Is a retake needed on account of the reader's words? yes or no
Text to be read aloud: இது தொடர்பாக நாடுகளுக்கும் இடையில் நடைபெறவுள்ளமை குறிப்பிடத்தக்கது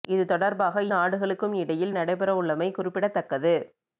no